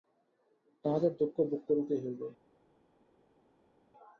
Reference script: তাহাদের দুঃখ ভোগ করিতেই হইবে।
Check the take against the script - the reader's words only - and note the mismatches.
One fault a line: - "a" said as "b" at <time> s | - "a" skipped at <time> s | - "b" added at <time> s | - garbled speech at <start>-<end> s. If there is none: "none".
none